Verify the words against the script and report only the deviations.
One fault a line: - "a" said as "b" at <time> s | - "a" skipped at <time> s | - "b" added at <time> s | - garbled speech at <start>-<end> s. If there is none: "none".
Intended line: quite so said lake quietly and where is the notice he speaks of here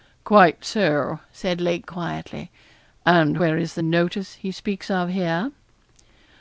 none